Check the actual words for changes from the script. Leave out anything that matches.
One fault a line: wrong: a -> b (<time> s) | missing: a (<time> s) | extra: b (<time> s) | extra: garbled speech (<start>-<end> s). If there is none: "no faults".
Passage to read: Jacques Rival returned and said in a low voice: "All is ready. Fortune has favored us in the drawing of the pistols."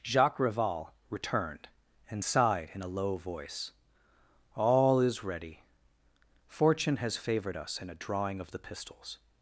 wrong: said -> sighed (2.2 s)
wrong: the -> a (7.9 s)